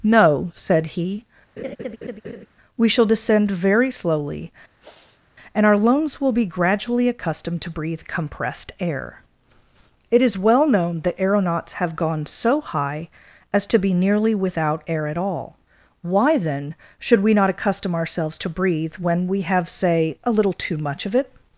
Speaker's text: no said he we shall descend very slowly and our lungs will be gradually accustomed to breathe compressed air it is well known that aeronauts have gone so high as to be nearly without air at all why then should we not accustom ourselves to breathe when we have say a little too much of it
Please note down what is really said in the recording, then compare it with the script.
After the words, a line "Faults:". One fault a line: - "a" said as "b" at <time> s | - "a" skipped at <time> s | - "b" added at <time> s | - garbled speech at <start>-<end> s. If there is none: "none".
no said he we shall descend very slowly and our lungs will be gradually accustomed to breathe compressed air it is well known that aeronauts have gone so high as to be nearly without air at all why then should we not accustom ourselves to breathe when we have say a little too much of it
Faults:
none